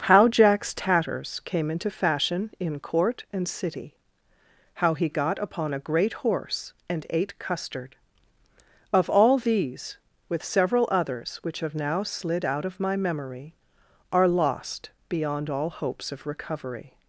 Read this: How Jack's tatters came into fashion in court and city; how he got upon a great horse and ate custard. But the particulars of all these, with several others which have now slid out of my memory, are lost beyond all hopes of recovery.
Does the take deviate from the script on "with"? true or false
false